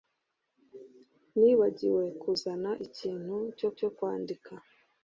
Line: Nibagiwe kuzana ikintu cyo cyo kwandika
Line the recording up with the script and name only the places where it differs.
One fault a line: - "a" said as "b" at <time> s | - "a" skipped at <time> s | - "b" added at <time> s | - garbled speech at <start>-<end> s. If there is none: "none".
none